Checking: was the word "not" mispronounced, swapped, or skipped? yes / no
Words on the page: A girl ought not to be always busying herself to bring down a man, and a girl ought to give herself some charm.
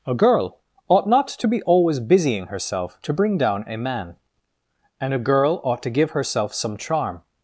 no